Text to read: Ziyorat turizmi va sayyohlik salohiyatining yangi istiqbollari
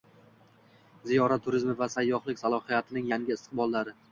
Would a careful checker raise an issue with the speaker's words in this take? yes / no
no